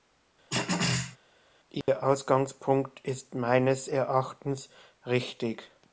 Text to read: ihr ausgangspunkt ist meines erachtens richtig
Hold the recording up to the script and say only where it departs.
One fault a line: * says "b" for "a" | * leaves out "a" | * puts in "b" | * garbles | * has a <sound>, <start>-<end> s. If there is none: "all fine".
* has a throat clearing, 0.5-1.2 s
* has a dropout, 1.8-1.9 s